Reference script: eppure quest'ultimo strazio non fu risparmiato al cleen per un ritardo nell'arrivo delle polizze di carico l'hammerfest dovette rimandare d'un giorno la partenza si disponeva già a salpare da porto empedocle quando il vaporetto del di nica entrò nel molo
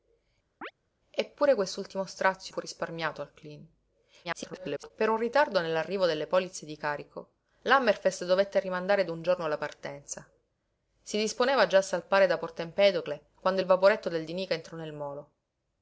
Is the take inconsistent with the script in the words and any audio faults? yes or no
yes